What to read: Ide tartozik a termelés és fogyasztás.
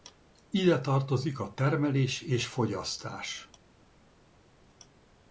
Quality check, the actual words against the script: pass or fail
pass